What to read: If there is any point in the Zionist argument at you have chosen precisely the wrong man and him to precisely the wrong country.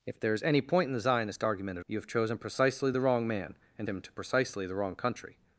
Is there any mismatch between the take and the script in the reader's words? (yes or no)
no